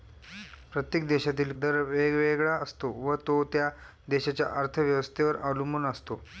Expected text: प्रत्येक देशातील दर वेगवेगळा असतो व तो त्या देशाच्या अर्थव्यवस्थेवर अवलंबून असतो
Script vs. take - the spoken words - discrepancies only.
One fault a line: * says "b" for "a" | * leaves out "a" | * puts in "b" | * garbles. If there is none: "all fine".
all fine